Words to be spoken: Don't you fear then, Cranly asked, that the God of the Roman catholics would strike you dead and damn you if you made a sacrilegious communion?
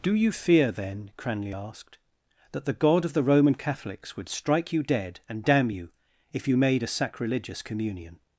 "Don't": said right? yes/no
no